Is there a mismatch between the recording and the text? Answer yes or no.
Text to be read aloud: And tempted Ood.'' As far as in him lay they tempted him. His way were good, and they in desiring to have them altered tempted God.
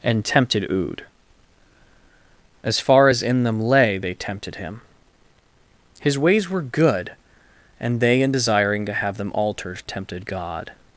yes